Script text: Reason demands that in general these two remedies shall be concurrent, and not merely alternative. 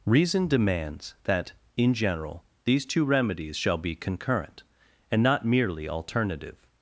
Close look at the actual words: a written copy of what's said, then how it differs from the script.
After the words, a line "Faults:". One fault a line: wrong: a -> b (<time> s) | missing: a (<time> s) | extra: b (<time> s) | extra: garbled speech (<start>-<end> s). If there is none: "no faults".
Reason demands that in general these two remedies shall be concurrent, and not merely alternative.
Faults:
no faults